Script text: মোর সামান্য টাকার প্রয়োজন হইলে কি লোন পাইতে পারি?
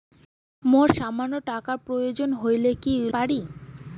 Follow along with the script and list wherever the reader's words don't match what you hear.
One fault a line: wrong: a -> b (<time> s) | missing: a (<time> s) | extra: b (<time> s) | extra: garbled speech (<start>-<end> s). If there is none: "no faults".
missing: লোন পাইতে (2.9 s)